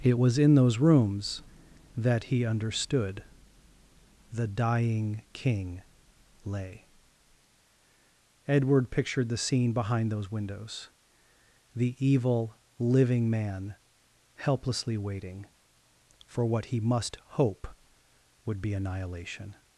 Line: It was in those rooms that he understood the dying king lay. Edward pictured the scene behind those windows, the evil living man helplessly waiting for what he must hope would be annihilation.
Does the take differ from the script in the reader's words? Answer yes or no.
no